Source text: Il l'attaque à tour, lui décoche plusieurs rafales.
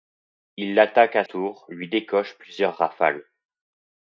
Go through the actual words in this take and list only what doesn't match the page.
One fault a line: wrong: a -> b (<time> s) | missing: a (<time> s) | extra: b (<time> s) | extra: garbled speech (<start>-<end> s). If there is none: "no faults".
no faults